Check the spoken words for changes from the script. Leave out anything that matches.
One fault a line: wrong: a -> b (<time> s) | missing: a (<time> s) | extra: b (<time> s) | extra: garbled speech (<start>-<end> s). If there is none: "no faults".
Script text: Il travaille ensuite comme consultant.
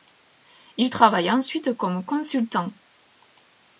no faults